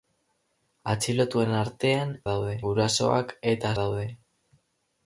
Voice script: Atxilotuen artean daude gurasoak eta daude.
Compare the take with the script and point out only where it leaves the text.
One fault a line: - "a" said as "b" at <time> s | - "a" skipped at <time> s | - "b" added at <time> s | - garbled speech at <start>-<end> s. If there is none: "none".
none